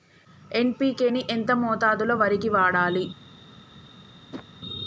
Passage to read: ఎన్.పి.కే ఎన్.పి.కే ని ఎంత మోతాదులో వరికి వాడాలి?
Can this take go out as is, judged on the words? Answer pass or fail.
fail